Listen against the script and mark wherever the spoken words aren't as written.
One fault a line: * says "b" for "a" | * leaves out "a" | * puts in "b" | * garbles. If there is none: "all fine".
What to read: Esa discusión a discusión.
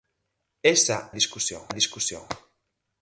all fine